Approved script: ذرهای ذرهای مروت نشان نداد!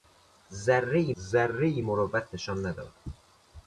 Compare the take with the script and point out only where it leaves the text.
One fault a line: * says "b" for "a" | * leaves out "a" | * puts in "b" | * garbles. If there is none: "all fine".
all fine